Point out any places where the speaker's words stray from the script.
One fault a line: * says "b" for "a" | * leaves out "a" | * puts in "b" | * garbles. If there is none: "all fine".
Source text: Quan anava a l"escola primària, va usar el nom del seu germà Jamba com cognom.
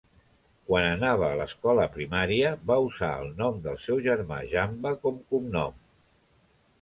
all fine